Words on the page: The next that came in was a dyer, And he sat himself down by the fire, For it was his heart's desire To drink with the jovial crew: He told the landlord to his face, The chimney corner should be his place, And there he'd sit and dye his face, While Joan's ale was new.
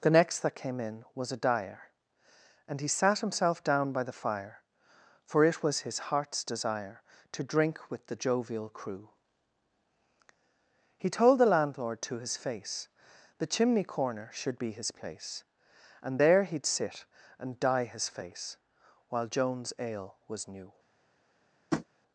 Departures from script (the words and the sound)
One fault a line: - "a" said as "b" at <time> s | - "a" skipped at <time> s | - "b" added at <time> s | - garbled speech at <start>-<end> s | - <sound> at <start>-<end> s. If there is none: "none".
- tap at 21.7-21.9 s